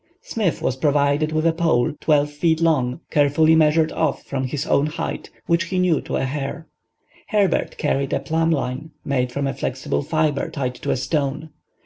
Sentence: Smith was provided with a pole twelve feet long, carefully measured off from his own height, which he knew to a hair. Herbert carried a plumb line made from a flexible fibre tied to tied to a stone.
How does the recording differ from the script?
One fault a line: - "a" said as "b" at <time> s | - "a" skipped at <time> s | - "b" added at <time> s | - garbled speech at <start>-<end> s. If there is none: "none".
- "tied to" skipped at 10.9 s